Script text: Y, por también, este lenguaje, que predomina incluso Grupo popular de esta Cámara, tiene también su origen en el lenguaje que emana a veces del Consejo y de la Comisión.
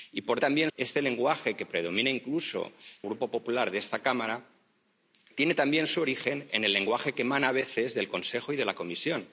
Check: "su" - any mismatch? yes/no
no